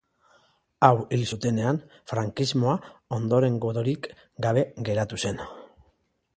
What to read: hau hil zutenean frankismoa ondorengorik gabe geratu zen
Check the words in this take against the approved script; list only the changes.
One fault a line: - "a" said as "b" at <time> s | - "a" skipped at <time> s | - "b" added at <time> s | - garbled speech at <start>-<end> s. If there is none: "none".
none